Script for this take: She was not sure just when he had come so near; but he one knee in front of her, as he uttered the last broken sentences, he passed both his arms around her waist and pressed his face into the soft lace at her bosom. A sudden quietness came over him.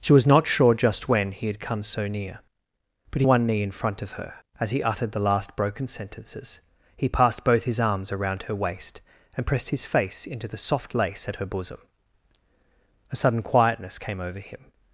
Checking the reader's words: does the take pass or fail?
pass